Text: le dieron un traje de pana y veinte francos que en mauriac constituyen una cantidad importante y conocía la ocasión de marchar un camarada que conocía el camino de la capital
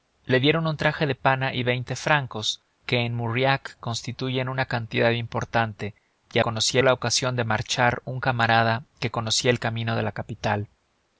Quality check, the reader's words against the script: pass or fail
pass